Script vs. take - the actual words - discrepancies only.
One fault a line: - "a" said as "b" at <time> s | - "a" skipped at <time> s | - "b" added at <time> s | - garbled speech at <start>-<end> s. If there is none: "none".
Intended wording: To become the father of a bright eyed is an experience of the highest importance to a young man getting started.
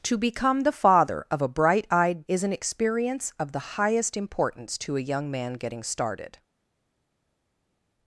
none